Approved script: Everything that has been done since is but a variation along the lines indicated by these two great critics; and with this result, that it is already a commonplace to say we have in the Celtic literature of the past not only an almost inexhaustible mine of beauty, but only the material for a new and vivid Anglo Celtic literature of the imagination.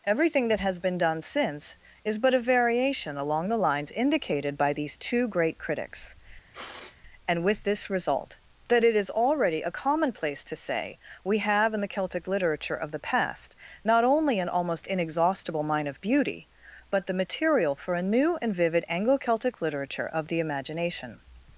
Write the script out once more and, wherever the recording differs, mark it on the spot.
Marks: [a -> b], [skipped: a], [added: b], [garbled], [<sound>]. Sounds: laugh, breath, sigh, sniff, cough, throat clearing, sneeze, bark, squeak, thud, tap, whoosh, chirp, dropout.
Everything that has been done since is but a variation along the lines indicated by these two great critics; [sniff] and with this result, that it is already a commonplace to say we have in the Celtic literature of the past not only an almost inexhaustible mine of beauty, but [skipped: only] the material for a new and vivid Anglo Celtic literature of the imagination.